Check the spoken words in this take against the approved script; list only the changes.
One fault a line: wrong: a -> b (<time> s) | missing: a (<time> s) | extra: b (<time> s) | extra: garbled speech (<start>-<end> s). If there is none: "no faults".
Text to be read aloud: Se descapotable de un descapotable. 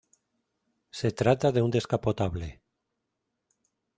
wrong: descapotable -> trata (1.1 s)